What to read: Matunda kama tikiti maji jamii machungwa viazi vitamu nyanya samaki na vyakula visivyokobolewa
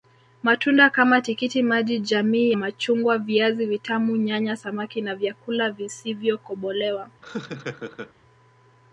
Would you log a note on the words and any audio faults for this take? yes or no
yes